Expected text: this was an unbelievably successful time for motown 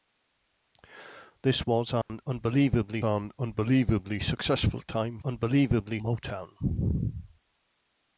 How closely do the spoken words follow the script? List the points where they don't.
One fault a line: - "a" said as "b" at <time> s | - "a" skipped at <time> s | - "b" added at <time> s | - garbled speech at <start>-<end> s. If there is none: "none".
- "an unbelievably" added at 3.0 s
- "for" said as "unbelievably" at 5.2 s